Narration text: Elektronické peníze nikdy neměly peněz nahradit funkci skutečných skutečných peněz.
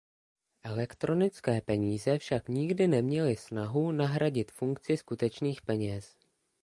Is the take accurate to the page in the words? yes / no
no